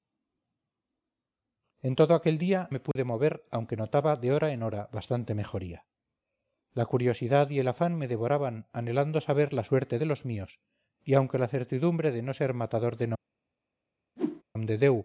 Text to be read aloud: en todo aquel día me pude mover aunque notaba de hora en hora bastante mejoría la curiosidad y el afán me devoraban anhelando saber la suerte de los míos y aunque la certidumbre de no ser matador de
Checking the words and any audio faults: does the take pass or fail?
fail